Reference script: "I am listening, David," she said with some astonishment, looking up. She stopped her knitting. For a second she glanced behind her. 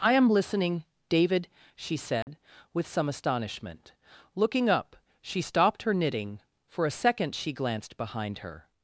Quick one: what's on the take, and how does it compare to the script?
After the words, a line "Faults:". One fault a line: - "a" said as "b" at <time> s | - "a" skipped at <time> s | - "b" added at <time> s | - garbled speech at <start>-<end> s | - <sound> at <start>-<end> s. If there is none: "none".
"I am listening, David," she said with some astonishment, looking up. She stopped her knitting. For a second she glanced behind her.
Faults:
- dropout at 2.2-2.3 s